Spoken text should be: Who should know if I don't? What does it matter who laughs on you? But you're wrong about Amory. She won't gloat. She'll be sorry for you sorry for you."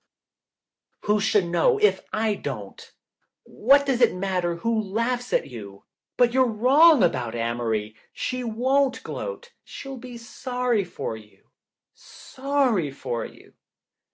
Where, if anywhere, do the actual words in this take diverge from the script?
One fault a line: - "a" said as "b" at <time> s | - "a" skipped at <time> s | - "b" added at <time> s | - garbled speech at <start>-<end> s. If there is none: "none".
- "on" said as "at" at 5.3 s